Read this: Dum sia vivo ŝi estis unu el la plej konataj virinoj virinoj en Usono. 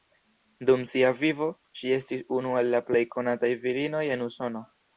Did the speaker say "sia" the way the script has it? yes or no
yes